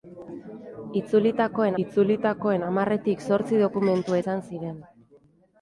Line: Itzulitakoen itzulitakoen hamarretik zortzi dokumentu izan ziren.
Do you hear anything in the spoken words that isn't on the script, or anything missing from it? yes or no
no